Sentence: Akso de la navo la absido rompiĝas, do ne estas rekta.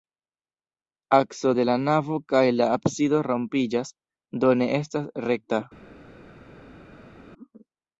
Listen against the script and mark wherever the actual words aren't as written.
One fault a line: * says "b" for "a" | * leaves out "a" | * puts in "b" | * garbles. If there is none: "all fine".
* puts in "kaj"